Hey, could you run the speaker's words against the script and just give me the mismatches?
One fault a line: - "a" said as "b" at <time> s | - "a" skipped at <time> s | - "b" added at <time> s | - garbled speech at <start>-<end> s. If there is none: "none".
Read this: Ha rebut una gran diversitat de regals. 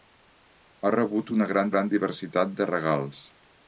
- "gran" added at 1.7 s